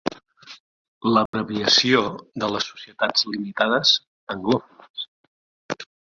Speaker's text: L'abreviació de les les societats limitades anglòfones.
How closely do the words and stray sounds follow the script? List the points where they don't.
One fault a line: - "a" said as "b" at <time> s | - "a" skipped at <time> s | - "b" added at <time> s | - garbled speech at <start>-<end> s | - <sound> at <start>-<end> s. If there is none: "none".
- dropout at 1.3-1.3 s
- "les" skipped at 2.7 s